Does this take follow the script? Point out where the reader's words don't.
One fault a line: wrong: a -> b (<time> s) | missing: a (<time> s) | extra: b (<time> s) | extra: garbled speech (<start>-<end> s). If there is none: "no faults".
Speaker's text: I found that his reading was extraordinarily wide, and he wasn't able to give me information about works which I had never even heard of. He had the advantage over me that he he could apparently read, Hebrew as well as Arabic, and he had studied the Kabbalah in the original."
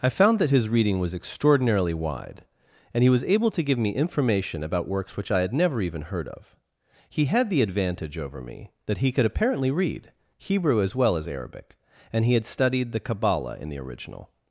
wrong: wasn't -> was (3.1 s)
missing: he (9.1 s)